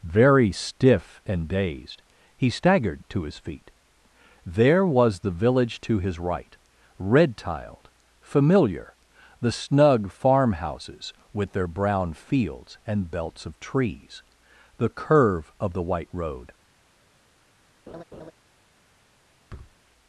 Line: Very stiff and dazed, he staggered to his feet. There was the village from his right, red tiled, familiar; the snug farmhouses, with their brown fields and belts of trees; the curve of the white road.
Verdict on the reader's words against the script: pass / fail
fail